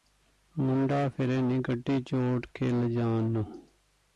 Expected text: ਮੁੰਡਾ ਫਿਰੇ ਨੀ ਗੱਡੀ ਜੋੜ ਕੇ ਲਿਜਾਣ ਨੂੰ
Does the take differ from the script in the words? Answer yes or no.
no